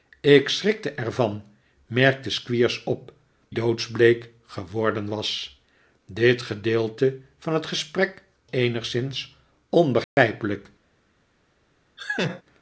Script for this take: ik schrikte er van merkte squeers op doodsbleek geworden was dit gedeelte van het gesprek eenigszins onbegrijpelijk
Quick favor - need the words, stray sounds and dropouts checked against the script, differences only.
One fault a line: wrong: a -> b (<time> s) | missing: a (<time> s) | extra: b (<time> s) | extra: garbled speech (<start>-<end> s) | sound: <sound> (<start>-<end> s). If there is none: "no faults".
sound: dropout (10.0-10.2 s)
sound: laugh (12.0-12.4 s)